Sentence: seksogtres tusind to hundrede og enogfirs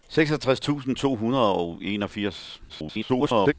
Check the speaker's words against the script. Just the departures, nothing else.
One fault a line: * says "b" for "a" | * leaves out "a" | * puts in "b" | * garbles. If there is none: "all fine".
* garbles